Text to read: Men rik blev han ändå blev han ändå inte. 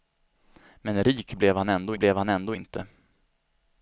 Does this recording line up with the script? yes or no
yes